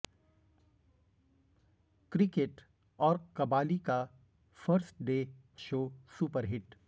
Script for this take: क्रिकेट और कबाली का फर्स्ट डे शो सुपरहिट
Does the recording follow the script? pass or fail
pass